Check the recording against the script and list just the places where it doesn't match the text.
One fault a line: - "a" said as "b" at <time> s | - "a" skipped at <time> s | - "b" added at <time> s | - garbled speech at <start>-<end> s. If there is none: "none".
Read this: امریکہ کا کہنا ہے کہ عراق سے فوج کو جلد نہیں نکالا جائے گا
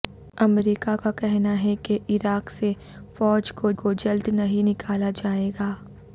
- "کو" added at 3.7 s